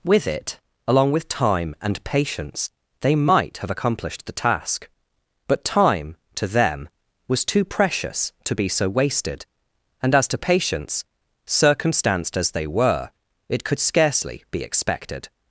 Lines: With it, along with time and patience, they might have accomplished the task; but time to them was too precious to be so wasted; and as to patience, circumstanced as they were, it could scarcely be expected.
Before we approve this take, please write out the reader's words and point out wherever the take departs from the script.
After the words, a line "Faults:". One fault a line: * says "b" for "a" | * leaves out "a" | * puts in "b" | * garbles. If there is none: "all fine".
With it, along with time and patience, they might have accomplished the task; but time to them was too precious to be so wasted; and as to patience, circumstanced as they were, it could scarcely be expected.
Faults:
all fine